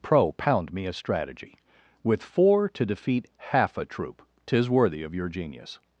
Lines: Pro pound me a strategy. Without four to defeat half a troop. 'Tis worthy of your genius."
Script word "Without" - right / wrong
wrong